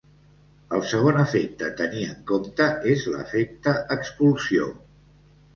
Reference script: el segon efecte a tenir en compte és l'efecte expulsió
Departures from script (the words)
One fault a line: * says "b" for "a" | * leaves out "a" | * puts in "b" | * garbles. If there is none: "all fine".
all fine